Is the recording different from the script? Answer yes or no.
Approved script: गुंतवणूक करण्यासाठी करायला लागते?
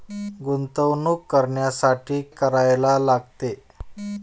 no